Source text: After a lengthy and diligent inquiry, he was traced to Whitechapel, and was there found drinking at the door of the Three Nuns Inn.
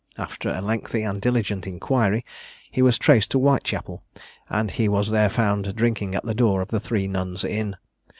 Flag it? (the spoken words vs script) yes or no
yes